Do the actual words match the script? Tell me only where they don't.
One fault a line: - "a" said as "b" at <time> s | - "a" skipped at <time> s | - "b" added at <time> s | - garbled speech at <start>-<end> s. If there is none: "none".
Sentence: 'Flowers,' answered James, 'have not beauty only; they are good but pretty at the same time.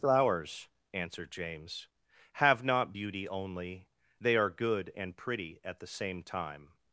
- "but" said as "and" at 5.0 s